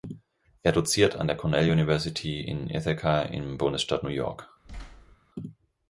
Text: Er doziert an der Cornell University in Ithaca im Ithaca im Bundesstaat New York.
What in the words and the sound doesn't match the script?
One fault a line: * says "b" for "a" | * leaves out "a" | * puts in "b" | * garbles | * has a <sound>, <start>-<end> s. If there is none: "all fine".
* leaves out "Ithaca im"
* has a thud, 4.6-5.2 s